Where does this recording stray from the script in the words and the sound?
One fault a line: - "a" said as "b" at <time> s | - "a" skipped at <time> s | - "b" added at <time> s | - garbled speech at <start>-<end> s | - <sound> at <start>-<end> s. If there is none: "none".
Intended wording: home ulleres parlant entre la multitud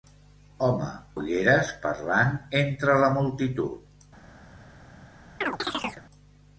- chirp at 5.4-6.0 s